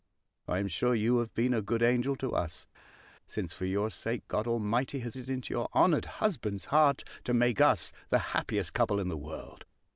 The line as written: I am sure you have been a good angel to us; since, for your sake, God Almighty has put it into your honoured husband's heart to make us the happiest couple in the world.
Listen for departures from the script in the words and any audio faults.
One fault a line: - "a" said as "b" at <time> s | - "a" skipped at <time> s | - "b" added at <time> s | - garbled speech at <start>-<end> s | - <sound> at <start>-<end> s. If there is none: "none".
- "put" skipped at 5.1 s